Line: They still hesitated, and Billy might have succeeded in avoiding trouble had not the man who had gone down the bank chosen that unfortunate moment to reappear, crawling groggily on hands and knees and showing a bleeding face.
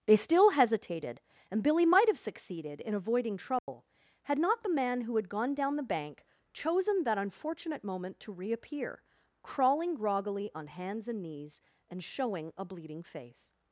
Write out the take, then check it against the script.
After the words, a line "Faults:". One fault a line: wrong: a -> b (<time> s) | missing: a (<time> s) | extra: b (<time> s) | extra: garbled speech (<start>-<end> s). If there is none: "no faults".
They still hesitated, and Billy might have succeeded in avoiding trouble had not the man who had gone down the bank chosen that unfortunate moment to reappear, crawling groggily on hands and knees and showing a bleeding face.
Faults:
no faults